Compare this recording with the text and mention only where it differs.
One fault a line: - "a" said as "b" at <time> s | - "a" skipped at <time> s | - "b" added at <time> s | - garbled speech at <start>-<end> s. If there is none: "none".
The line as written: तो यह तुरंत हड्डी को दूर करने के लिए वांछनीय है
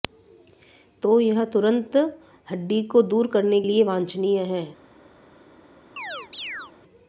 - "के" skipped at 3.6 s